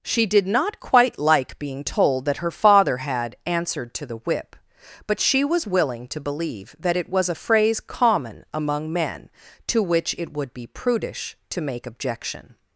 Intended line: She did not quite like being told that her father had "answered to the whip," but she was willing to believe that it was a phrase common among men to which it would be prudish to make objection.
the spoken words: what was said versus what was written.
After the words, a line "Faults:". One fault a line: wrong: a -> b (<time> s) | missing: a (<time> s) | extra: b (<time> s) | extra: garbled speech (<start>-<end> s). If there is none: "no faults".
She did not quite like being told that her father had "answered to the whip," but she was willing to believe that it was a phrase common among men to which it would be prudish to make objection.
Faults:
no faults